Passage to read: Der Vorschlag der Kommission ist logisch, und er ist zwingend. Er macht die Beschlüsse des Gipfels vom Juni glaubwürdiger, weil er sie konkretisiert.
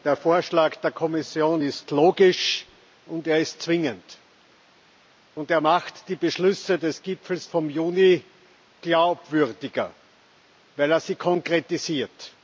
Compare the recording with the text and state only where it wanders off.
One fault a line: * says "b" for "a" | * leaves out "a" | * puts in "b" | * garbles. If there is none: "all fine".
all fine